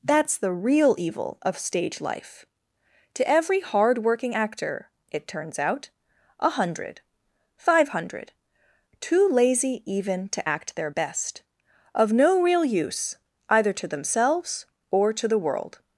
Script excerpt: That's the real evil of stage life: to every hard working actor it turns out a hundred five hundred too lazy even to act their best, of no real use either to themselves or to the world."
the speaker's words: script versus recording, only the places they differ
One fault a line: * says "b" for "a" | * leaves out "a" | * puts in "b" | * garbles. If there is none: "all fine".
all fine